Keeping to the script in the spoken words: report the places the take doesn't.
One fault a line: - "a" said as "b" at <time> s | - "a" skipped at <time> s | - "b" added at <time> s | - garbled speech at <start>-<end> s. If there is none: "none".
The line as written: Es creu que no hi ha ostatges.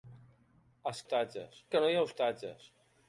- "creu" said as "ostatges" at 1.0 s